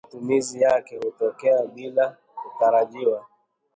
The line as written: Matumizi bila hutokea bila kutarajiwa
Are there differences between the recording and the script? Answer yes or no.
yes